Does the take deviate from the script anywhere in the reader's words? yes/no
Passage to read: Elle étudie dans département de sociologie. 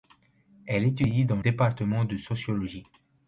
no